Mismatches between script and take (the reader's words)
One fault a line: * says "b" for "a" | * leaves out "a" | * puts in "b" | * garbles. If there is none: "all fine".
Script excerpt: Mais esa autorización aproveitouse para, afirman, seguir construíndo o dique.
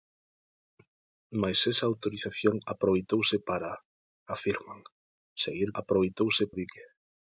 * says "aproveitouse" for "construíndo"